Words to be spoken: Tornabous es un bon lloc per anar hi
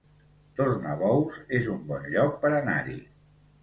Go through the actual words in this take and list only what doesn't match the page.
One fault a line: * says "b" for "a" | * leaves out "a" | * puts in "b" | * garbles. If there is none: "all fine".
all fine